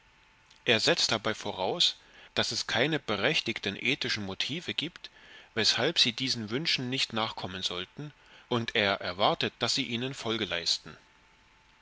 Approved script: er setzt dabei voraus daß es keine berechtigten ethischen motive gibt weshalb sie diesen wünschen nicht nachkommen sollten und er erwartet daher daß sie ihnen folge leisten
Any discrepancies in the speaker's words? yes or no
yes